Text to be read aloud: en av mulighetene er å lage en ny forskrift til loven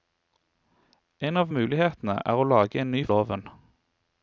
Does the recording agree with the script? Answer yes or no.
no